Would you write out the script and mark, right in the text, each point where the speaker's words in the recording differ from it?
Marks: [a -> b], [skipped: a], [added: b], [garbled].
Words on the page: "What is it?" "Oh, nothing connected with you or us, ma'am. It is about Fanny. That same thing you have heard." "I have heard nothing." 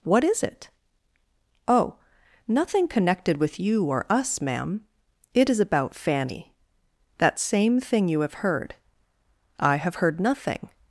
"What is it?" "Oh, nothing connected with you or us, ma'am. It is about Fanny. That same thing you have heard." "I have heard nothing."